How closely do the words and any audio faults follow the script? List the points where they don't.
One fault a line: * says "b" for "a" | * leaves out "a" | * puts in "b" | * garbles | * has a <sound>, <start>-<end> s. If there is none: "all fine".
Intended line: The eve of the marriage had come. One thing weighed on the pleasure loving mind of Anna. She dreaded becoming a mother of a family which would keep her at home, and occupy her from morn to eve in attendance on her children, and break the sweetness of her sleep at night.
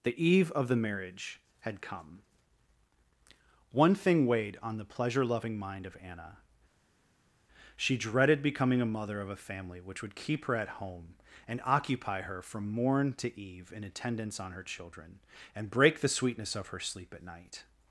all fine